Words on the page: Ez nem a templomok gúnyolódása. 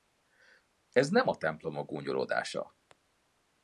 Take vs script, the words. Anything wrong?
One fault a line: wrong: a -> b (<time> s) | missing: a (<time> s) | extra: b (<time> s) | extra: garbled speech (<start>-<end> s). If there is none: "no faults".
no faults